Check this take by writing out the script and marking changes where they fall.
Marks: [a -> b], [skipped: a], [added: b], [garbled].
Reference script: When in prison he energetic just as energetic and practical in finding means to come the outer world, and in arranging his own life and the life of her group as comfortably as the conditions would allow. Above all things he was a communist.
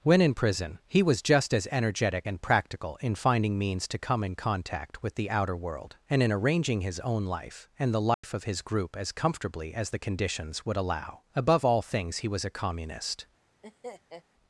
When in prison he [energetic -> was] just as energetic and practical in finding means to come [added: in contact with] the outer world, and in arranging his own life and the life of [her -> his] group as comfortably as the conditions would allow. Above all things he was a communist.